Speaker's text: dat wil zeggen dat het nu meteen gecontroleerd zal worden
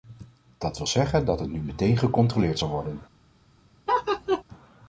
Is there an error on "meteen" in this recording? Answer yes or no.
no